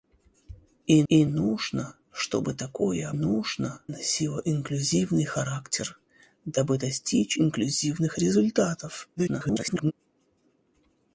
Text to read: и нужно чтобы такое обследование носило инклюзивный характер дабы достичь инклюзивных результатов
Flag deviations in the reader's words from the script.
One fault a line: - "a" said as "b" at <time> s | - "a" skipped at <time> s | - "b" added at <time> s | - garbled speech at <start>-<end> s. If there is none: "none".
- "и" added at 1.1 s
- "обследование" said as "нужно" at 3.1 s
- garbled speech at 9.2-9.9 s